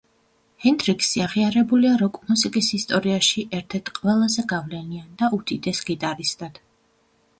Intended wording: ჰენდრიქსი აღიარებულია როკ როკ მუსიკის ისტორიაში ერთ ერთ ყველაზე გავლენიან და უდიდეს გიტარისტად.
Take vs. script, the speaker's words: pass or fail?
fail